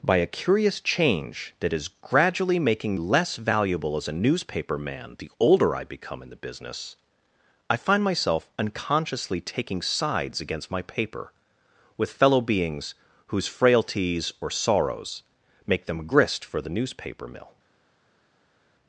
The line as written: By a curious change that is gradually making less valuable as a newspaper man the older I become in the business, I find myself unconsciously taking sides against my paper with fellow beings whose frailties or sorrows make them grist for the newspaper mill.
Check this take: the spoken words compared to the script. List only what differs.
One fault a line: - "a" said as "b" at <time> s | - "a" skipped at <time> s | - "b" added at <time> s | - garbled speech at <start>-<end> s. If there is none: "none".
none